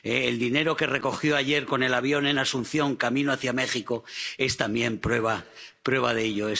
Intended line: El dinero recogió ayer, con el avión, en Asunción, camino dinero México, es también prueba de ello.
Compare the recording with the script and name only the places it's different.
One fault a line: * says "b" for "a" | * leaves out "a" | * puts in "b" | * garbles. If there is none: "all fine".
* puts in "que"
* says "hacia" for "dinero"